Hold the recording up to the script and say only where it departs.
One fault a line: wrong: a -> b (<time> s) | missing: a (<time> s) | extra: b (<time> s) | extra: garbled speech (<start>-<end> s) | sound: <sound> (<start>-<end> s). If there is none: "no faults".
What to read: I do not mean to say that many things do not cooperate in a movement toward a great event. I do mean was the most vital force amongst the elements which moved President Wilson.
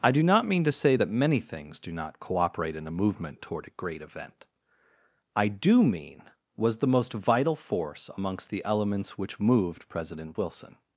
no faults